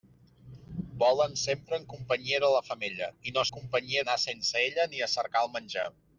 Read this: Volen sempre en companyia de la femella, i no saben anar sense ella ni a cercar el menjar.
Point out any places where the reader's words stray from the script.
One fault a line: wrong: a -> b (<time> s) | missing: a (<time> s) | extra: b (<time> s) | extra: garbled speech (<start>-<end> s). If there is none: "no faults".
wrong: saben -> companyia (3.5 s)